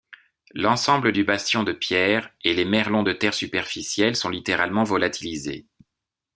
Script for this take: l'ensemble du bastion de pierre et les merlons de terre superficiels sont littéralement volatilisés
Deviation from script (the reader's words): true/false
false